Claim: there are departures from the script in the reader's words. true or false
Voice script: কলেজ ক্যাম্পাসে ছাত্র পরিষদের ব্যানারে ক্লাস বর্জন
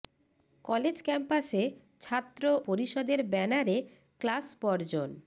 false